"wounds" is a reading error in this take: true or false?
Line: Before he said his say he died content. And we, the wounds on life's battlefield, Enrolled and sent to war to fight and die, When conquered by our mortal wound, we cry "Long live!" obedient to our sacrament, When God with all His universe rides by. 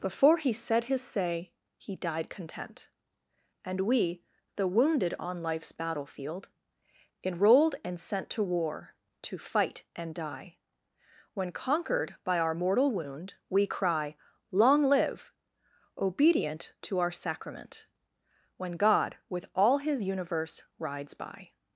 true